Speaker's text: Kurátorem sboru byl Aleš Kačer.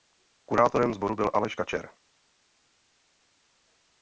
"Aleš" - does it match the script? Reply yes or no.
yes